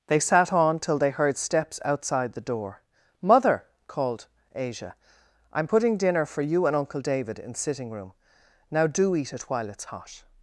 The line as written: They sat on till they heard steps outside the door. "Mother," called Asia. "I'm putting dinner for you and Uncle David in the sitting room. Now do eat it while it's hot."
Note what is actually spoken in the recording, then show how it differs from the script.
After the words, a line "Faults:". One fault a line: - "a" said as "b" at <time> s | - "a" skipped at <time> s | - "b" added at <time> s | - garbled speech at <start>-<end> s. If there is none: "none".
They sat on till they heard steps outside the door. "Mother," called Asia. "I'm putting dinner for you and Uncle David in sitting room. Now do eat it while it's hot."
Faults:
- "the" skipped at 7.5 s